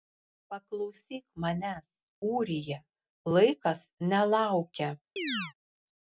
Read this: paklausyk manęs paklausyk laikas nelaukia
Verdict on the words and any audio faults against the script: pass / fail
fail